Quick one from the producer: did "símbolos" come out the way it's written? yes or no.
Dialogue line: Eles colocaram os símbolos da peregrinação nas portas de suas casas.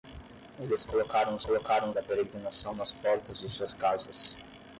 no